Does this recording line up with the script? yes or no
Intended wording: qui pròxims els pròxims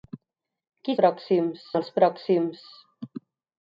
yes